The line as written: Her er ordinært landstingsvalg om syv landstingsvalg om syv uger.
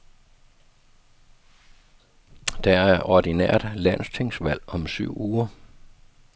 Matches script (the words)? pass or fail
fail